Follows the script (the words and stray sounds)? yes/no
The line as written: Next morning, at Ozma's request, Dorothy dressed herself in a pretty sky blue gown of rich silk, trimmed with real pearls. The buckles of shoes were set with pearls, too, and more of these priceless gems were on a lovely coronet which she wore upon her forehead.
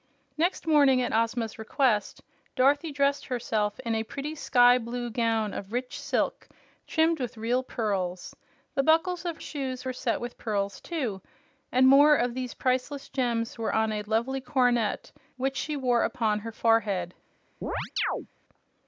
no